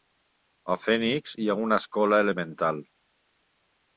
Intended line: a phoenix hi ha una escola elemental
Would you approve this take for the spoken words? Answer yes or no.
yes